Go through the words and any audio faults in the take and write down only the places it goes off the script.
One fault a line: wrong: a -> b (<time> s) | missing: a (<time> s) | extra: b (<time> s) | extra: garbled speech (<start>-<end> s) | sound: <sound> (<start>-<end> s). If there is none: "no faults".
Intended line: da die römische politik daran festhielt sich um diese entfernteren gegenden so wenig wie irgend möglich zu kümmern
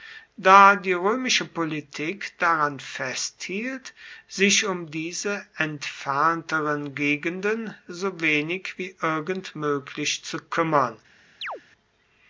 sound: chirp (11.4-11.6 s)